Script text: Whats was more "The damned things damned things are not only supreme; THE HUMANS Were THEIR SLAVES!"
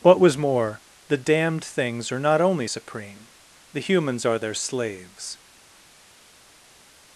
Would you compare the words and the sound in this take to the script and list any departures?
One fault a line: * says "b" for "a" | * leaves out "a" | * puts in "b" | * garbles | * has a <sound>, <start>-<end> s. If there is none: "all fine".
* says "What" for "Whats"
* leaves out "damned things"
* says "ARE" for "Were"